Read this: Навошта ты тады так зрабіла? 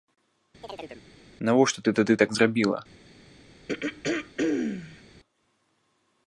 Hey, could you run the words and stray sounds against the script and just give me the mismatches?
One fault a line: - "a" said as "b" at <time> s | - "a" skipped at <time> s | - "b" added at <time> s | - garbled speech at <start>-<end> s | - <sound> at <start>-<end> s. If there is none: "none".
- chirp at 0.6-1.0 s
- throat clearing at 3.7-5.0 s